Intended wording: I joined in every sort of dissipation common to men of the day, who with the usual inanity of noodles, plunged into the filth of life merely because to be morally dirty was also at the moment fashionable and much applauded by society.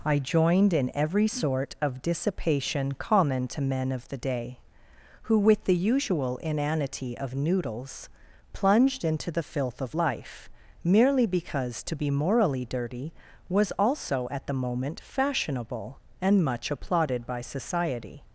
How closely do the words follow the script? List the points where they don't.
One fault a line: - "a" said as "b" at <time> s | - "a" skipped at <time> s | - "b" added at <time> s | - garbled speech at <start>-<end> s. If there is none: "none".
none